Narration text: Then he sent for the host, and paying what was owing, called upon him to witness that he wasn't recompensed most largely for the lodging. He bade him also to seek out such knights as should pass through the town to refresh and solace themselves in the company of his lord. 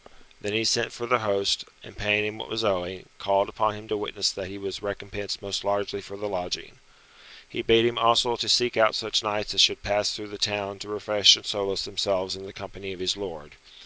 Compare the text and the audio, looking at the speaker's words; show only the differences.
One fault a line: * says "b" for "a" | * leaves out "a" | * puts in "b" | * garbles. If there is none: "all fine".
* puts in "him"
* says "was" for "wasn't"